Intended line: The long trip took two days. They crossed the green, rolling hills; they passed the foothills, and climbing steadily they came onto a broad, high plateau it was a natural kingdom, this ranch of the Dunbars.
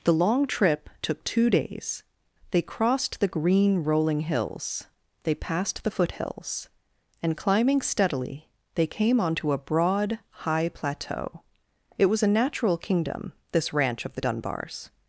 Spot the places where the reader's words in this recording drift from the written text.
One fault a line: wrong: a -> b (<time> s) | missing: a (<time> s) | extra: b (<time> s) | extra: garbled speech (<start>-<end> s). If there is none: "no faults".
no faults